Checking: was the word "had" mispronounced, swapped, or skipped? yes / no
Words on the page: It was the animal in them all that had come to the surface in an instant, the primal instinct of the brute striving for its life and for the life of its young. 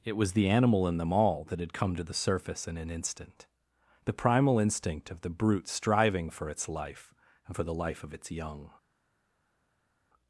no